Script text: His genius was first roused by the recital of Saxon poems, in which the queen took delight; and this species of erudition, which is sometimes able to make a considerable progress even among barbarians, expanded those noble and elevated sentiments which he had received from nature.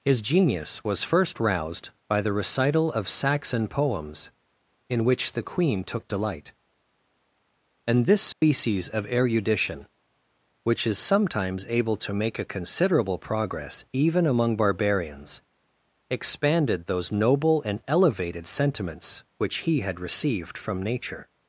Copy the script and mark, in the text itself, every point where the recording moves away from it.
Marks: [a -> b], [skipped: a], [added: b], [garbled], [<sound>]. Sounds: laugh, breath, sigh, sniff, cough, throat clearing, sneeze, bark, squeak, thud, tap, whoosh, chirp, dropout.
His genius was first roused by the recital of Saxon poems, in which the queen took delight; and this species [dropout] of erudition, which is sometimes able to make a considerable progress even among barbarians, expanded those noble and elevated sentiments which he had received from nature.